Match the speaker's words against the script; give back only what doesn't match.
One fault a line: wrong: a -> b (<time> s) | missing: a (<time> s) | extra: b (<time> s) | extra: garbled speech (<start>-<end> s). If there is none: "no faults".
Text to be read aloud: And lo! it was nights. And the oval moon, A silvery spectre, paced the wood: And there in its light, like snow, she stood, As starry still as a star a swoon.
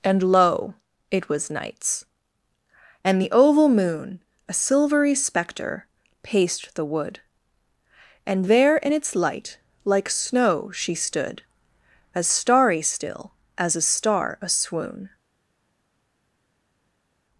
no faults